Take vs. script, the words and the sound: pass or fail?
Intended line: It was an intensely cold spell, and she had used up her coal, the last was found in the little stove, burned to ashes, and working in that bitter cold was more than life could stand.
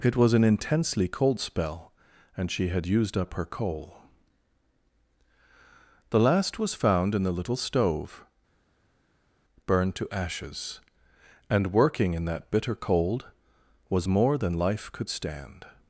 pass